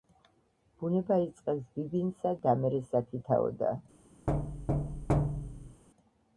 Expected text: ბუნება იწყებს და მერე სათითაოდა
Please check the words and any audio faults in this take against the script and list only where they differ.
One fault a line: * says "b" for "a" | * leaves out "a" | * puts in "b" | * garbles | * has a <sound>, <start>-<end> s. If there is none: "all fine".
* puts in "ბიბინსა"
* has a thud, 4.3-5.8 s